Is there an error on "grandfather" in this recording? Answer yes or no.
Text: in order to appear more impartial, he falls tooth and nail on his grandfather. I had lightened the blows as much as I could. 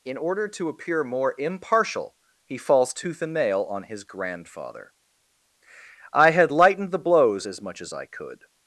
no